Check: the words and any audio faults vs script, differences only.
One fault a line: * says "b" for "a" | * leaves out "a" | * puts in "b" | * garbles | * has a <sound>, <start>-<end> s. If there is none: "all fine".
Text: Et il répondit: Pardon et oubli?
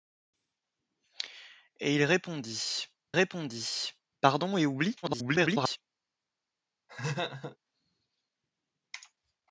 * puts in "répondit"
* garbles
* has a laugh, 6.9-7.6 s